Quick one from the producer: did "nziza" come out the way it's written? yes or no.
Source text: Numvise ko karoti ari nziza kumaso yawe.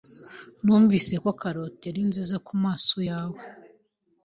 yes